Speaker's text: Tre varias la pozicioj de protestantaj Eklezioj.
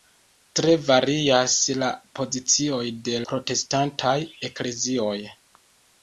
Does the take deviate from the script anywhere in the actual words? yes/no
no